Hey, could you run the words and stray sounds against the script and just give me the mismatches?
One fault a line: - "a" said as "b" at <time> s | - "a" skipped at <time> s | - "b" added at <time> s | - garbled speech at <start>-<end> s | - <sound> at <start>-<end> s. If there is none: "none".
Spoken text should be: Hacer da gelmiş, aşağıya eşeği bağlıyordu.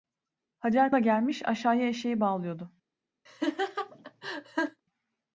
- laugh at 3.3-4.8 s